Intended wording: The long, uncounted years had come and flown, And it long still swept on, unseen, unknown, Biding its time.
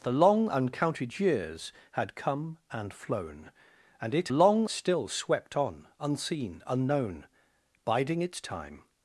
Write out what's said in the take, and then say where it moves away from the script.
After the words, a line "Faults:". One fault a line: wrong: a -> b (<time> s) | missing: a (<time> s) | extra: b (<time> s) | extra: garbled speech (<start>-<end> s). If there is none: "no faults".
The long, uncounted years had come and flown, And it long still swept on, unseen, unknown, Biding its time.
Faults:
no faults